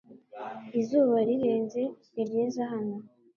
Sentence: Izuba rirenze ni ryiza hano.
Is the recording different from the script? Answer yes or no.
no